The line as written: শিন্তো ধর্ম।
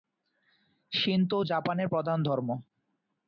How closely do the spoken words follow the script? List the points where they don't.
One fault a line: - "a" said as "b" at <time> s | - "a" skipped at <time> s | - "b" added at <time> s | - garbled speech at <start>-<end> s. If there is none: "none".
- "জাপানের প্রধান" added at 1.4 s